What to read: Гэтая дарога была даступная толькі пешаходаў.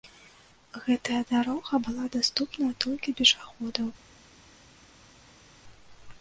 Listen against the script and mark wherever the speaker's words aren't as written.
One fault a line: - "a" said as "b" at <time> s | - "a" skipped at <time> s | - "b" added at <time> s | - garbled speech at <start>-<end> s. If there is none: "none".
none